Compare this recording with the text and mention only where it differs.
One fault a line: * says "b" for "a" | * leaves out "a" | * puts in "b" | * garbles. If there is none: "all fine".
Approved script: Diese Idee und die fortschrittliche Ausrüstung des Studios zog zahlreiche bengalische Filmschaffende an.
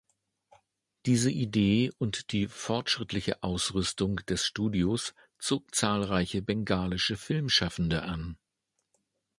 all fine